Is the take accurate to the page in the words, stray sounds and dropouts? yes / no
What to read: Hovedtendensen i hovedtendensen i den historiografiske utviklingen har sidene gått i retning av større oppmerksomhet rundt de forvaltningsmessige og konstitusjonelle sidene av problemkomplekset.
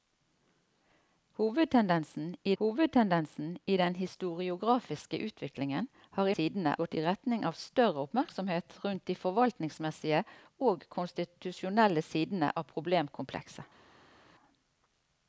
yes